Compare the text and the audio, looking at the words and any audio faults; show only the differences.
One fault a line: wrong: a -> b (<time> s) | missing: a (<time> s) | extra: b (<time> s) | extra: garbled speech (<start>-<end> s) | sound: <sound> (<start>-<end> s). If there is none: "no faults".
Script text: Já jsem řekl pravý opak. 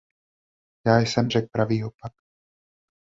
no faults